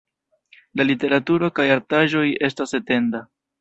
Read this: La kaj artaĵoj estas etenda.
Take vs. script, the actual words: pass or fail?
fail